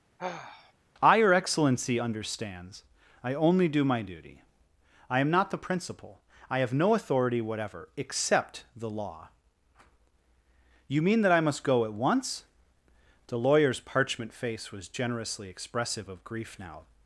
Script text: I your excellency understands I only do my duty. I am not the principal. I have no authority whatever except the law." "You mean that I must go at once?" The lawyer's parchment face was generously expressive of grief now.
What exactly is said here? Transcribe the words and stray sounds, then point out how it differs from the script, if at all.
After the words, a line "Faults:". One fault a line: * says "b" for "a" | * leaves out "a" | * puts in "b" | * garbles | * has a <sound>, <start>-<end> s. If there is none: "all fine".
I your excellency understands I only do my duty. I am not the principal. I have no authority whatever except the law." "You mean that I must go at once?" The lawyer's parchment face was generously expressive of grief now.
Faults:
* has a sigh, 0.2-0.7 s